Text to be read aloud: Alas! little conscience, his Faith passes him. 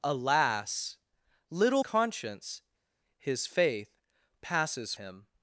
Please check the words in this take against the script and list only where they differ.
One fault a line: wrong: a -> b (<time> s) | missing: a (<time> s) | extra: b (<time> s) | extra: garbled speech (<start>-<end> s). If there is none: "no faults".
no faults